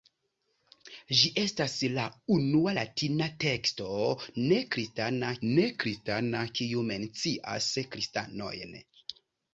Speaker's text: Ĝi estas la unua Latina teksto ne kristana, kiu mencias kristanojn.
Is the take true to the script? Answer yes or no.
no